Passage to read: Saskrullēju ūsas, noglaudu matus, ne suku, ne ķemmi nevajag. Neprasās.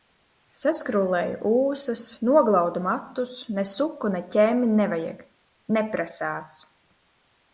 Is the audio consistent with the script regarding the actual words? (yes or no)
yes